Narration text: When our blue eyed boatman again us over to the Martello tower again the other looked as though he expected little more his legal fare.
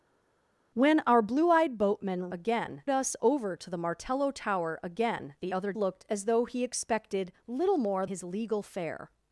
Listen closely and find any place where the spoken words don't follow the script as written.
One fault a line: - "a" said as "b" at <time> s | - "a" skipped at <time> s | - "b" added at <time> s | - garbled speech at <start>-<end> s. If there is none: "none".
none